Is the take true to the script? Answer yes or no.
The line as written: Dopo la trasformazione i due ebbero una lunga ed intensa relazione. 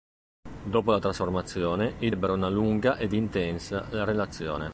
no